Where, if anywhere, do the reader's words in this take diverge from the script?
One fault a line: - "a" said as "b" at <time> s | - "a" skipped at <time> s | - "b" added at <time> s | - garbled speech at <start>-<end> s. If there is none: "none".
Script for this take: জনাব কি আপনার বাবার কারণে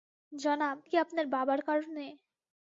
none